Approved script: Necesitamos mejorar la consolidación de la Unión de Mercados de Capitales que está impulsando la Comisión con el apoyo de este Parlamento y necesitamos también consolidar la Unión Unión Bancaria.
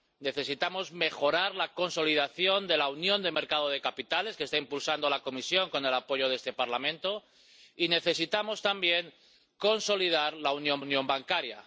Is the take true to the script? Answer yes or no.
yes